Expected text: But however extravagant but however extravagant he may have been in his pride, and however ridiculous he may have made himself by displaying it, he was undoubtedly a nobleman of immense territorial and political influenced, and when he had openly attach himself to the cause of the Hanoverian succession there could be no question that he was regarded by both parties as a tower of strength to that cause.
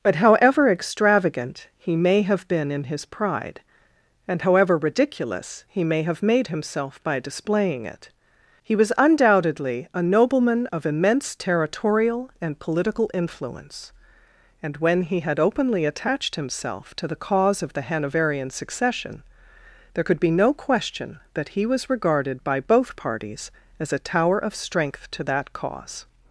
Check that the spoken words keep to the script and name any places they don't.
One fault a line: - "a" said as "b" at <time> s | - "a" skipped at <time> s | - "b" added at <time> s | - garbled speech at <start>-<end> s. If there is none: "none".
- "but however extravagant" skipped at 1.7 s
- "influenced" said as "influence" at 13.1 s
- "attach" said as "attached" at 15.8 s